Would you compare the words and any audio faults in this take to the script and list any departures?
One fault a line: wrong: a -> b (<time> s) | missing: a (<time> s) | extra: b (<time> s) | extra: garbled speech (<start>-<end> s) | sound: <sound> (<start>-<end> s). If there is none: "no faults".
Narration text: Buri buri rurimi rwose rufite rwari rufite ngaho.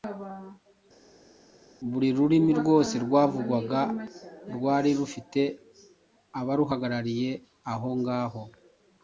missing: buri (2.1 s)
wrong: rufite -> rwavugwaga (3.1 s)
extra: abaruhagarariye aho (6.4 s)